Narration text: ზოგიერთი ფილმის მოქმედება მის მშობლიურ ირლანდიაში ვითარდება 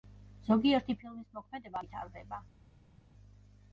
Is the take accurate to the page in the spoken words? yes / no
no